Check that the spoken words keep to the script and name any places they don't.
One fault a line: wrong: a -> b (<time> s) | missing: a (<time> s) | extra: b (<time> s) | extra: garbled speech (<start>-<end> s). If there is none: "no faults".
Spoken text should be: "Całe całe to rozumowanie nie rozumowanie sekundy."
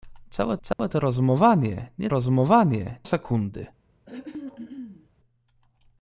no faults